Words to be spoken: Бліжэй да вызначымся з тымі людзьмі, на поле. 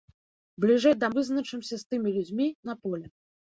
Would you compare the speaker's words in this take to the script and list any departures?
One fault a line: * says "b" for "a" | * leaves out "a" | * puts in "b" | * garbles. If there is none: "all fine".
all fine